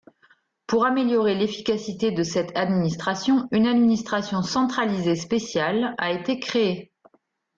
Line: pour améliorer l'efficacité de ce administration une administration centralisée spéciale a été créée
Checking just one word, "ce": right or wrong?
wrong